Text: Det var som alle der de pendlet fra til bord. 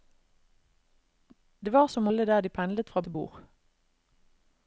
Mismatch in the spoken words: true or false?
false